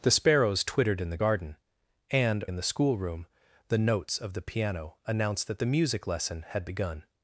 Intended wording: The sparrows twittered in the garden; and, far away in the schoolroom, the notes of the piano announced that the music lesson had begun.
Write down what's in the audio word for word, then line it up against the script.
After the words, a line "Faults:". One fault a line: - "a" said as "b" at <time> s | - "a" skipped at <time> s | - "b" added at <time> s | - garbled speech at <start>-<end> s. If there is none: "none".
The sparrows twittered in the garden; and, in the schoolroom, the notes of the piano announced that the music lesson had begun.
Faults:
- "far away" skipped at 2.4 s